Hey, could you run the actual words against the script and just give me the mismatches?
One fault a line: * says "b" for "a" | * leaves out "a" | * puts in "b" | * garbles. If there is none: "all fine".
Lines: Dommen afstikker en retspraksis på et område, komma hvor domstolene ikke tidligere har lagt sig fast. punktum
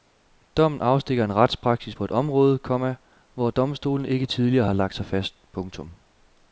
all fine